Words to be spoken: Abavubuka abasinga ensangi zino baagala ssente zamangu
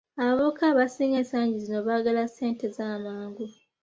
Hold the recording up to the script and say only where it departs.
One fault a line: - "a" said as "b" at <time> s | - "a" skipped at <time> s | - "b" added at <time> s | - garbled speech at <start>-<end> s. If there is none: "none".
none